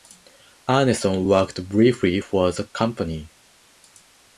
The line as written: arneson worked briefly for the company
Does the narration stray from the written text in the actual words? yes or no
no